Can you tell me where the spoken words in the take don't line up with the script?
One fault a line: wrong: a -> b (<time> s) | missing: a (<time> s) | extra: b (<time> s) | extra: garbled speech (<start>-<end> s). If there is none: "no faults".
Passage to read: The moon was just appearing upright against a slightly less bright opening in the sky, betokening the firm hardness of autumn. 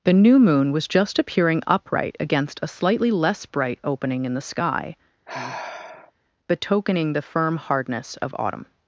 extra: new (0.1 s)